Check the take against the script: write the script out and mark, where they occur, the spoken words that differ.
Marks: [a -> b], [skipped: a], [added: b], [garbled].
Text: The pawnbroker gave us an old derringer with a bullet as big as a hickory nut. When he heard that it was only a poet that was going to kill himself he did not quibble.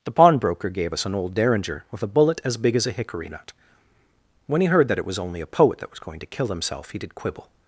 The pawnbroker gave us an old derringer with a bullet as big as a hickory nut. When he heard that it was only a poet that was going to kill himself he did [skipped: not] quibble.